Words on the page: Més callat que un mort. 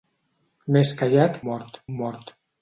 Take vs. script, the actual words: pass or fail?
fail